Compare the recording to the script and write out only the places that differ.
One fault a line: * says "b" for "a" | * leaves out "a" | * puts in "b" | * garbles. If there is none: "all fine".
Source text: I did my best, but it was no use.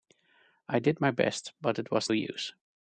* leaves out "no"